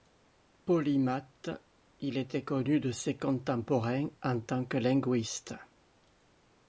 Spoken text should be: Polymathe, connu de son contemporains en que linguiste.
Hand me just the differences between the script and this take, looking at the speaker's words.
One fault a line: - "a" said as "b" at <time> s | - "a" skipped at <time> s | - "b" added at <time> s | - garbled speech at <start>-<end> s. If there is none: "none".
- "il était" added at 2.0 s
- "son" said as "ses" at 2.9 s
- "tant" added at 4.4 s